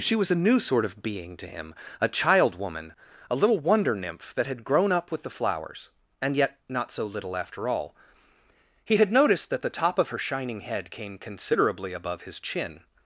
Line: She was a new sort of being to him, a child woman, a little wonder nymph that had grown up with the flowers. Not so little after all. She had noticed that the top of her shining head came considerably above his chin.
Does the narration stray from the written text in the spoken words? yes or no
yes